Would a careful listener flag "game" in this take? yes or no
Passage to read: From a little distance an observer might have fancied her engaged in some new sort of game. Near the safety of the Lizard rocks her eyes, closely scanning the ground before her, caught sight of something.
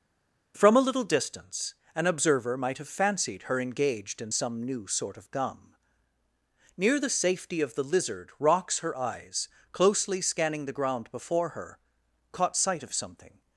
yes